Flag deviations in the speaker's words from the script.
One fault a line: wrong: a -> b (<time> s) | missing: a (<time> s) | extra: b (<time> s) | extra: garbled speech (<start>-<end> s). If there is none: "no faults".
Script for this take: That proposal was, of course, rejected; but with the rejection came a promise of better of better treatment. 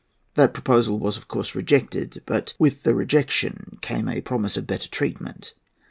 missing: of better (4.9 s)